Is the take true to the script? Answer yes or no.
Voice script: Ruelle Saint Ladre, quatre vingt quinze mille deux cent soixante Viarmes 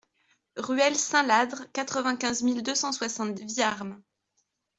yes